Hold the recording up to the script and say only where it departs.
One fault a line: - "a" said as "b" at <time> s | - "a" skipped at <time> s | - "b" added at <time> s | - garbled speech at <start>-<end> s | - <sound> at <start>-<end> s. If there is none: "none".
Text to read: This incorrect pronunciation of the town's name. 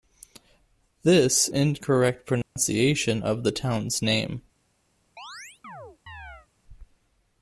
- dropout at 2.4-2.6 s
- chirp at 5.2-6.5 s